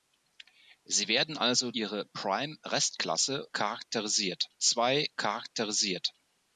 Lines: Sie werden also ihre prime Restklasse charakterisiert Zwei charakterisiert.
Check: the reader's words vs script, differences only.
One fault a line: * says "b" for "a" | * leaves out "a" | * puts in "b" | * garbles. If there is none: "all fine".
all fine